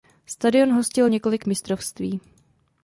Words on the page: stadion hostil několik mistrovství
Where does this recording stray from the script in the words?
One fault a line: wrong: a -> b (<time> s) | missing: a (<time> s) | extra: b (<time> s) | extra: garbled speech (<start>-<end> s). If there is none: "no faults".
no faults